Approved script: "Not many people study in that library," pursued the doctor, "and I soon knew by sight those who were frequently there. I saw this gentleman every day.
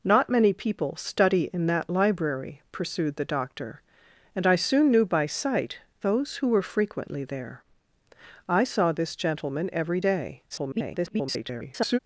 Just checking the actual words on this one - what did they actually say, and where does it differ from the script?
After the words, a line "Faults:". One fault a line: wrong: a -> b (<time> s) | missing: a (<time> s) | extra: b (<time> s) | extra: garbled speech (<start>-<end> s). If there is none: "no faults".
"Not many people study in that library," pursued the doctor, "and I soon knew by sight those who were frequently there. I saw this gentleman every day. [garbled]
Faults:
extra: garbled speech (10.5-12.0 s)